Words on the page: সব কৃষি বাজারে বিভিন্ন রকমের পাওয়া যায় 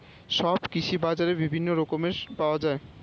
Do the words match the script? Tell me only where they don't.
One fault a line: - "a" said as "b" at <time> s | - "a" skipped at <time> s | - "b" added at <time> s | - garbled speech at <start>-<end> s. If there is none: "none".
none